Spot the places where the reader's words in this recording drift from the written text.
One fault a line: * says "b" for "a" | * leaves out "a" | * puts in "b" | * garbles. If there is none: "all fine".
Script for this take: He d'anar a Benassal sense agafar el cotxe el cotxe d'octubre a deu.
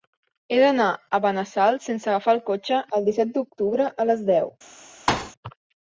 * says "disset" for "cotxe"
* puts in "les"